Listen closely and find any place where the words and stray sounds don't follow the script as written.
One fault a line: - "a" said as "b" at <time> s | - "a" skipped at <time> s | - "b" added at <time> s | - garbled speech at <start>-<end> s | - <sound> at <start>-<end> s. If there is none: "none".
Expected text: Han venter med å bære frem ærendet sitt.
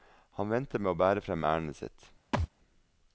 - thud at 2.3-2.5 s